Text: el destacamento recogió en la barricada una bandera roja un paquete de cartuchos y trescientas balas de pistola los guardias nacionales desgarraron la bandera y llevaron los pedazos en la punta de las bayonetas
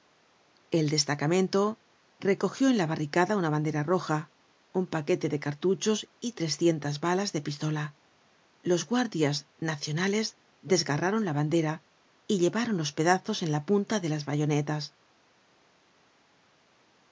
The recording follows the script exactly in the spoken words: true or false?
true